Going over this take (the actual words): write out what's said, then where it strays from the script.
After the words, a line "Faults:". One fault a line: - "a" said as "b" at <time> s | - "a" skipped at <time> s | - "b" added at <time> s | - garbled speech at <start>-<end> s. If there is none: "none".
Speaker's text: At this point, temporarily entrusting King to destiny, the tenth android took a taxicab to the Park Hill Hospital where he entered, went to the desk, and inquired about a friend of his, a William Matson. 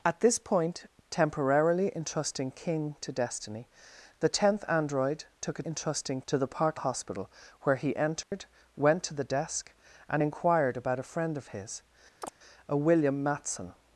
At this point, temporarily entrusting King to destiny, the tenth android took a entrusting to the Park Hospital where he entered, went to the desk, and inquired about a friend of his, a William Matson.
Faults:
- "taxicab" said as "entrusting" at 5.7 s
- "Hill" skipped at 6.8 s